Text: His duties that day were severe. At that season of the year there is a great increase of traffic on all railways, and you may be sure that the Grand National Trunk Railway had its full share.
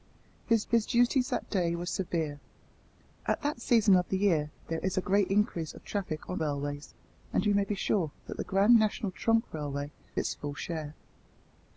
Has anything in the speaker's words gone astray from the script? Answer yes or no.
yes